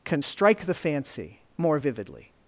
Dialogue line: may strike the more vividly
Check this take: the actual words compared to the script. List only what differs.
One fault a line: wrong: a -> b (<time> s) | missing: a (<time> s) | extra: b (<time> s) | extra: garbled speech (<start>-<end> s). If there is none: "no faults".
wrong: may -> can (0.1 s)
extra: fancy (0.7 s)